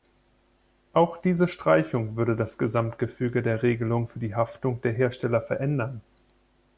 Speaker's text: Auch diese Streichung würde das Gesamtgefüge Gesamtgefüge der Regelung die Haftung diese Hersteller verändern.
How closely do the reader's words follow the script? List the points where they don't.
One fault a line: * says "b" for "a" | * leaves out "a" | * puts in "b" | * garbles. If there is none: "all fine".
* leaves out "Gesamtgefüge"
* puts in "für"
* says "der" for "diese"